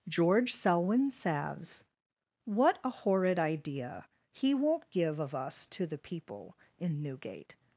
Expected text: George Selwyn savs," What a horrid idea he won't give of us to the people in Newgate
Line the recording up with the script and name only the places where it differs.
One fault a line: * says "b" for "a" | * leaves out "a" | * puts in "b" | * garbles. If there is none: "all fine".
all fine